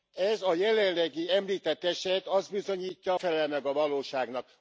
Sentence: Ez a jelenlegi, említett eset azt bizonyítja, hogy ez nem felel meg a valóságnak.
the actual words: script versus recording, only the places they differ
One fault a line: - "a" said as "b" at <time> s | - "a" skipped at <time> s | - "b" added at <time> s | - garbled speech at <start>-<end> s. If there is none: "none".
- "hogy ez nem" skipped at 3.1 s